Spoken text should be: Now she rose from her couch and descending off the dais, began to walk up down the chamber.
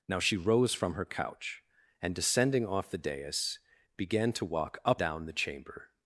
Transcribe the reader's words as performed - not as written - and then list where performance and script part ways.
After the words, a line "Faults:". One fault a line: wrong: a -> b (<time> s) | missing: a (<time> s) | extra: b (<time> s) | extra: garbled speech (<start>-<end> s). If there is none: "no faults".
Now she rose from her couch and descending off the dais, began to walk up down the chamber.
Faults:
no faults